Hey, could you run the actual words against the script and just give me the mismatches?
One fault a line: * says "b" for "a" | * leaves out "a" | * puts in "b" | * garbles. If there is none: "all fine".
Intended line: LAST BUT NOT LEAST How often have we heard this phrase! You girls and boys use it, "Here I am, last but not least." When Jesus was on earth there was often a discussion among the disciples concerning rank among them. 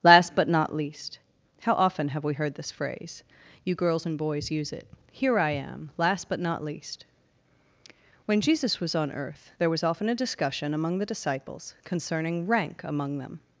all fine